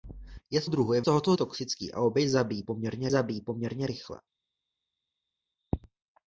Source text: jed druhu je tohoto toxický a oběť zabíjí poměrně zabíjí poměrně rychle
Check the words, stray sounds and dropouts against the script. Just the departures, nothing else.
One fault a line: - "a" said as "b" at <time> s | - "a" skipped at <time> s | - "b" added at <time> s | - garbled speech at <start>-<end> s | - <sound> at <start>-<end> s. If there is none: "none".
none